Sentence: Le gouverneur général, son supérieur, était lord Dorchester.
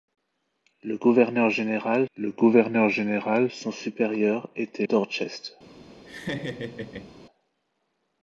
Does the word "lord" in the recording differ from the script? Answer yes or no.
yes